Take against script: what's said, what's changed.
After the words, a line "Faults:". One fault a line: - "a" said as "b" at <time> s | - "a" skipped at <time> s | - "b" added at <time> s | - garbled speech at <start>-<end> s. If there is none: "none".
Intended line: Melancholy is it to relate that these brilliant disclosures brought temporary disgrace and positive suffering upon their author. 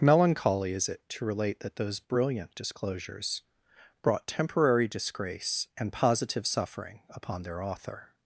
Melancholy is it to relate that those brilliant disclosures brought temporary disgrace and positive suffering upon their author.
Faults:
- "these" said as "those" at 1.8 s